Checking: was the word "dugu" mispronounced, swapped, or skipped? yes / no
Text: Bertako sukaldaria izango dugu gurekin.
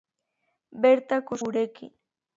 yes